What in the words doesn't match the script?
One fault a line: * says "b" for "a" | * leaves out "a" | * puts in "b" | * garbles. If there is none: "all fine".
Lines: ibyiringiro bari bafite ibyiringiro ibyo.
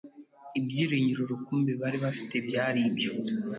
* puts in "rukumbi"
* says "byari" for "ibyiringiro"